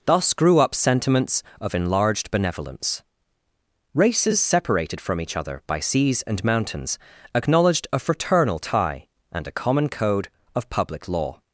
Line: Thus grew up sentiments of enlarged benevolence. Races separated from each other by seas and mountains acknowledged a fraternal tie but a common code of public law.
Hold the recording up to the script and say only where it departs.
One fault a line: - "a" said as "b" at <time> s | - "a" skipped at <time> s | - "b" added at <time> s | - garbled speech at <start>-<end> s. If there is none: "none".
- "but" said as "and" at 9.3 s